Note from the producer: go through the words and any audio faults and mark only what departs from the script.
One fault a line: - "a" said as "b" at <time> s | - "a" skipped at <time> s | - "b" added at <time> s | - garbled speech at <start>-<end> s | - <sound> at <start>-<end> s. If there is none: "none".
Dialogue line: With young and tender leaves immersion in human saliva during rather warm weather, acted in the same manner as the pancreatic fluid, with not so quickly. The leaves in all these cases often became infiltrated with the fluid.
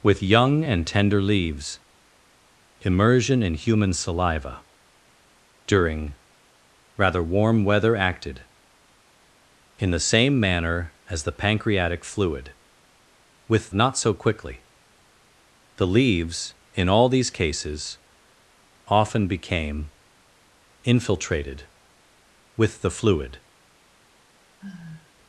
- sigh at 24.6-25.1 s